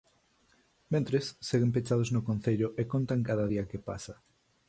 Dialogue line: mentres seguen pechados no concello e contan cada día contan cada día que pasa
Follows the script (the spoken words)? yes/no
no